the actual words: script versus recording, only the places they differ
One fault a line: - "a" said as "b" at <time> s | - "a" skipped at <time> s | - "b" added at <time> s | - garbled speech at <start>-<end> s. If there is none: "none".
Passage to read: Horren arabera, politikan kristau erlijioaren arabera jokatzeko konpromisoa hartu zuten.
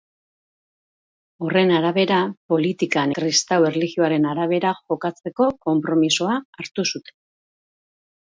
none